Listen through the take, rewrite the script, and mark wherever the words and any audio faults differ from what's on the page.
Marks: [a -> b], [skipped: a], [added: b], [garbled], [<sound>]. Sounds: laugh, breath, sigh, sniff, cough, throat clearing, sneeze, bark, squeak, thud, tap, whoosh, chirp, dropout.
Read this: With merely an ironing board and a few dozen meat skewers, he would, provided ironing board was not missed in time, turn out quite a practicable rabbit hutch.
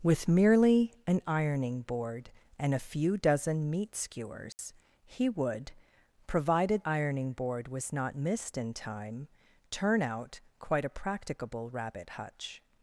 With merely an ironing board and a few dozen meat skewers, [dropout] he would, provided ironing board was not missed in time, turn out quite a practicable rabbit hutch.